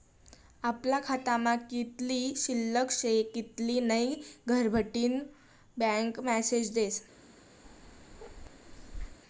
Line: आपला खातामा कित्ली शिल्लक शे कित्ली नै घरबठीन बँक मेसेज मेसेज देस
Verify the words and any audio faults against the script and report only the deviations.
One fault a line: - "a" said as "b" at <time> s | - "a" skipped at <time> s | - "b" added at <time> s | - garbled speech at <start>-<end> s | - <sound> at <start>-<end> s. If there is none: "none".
- "मेसेज" skipped at 6.7 s
- bark at 7.6-9.2 s